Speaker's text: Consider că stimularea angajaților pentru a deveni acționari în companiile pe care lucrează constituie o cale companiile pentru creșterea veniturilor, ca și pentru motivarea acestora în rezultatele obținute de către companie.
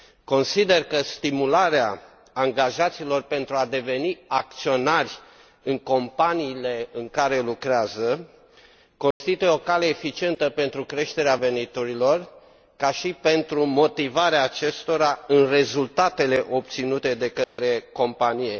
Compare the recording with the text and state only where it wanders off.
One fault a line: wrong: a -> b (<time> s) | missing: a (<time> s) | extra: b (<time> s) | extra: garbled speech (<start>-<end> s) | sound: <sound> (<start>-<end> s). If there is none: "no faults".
wrong: pe -> în (6.9 s)
sound: dropout (9.1-9.2 s)
wrong: companiile -> eficientă (9.9 s)
sound: dropout (17.4-17.6 s)